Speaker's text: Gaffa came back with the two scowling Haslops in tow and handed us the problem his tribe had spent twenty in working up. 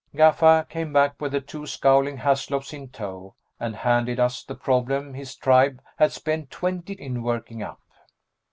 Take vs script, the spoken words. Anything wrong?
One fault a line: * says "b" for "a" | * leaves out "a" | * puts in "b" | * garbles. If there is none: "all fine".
all fine